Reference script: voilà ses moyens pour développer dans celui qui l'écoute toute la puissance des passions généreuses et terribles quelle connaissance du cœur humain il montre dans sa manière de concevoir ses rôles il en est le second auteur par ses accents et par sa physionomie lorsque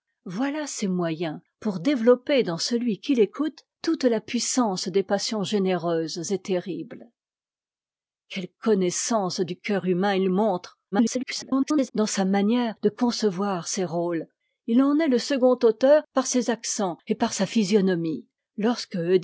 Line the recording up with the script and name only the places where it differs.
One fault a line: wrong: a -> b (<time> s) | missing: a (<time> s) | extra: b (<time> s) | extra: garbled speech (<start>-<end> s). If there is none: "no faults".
extra: garbled speech (10.9-11.9 s)